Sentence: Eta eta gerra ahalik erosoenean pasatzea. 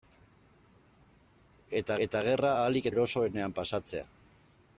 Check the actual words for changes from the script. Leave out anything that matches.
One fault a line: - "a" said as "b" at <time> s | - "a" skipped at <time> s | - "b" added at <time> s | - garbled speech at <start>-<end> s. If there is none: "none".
none